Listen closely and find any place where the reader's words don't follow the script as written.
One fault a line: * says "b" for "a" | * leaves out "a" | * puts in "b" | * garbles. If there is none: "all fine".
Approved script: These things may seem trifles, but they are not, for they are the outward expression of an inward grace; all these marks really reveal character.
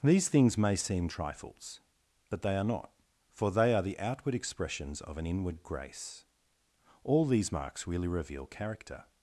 * says "expressions" for "expression"